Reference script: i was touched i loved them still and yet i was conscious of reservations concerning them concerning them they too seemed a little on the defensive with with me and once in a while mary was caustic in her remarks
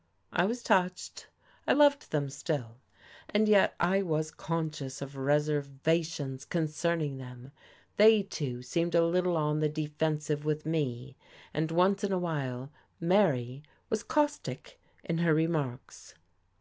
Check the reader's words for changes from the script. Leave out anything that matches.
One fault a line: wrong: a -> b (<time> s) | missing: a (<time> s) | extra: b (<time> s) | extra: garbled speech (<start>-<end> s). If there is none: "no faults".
missing: concerning them (7.5 s)
missing: with (10.6 s)